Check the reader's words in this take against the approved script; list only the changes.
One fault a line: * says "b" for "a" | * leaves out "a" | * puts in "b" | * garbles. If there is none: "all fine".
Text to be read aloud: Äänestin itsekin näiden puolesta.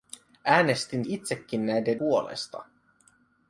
all fine